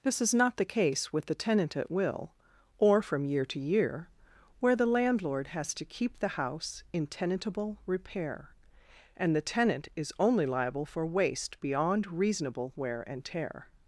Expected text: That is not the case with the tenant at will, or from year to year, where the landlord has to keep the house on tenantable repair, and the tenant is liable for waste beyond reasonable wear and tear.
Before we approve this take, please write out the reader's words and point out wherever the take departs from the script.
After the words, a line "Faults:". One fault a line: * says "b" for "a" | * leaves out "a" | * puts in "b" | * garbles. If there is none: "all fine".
This is not the case with the tenant at will, or from year to year, where the landlord has to keep the house in tenantable repair, and the tenant is only liable for waste beyond reasonable wear and tear.
Faults:
* says "This" for "That"
* says "in" for "on"
* puts in "only"